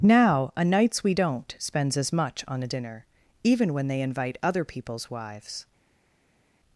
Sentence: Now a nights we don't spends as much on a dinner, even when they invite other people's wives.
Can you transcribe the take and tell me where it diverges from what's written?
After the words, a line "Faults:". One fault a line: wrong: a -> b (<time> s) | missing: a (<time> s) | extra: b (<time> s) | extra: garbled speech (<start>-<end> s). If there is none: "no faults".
Now a nights we don't spends as much on a dinner, even when they invite other people's wives.
Faults:
no faults